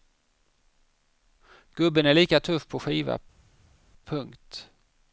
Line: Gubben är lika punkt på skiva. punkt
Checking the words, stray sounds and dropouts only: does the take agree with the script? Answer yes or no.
no